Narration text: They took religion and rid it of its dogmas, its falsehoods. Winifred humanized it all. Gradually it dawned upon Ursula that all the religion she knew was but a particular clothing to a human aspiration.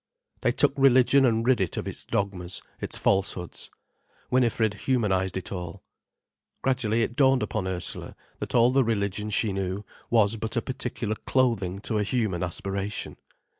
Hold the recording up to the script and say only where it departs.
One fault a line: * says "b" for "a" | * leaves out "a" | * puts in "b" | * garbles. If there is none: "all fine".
all fine